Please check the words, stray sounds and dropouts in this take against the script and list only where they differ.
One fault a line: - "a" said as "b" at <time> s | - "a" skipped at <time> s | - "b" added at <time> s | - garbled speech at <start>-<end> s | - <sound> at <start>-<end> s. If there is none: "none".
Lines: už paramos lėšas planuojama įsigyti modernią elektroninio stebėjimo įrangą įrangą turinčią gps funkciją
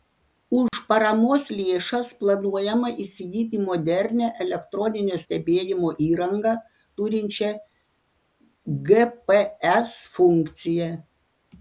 - dropout at 0.7-0.7 s
- "įrangą" skipped at 6.5 s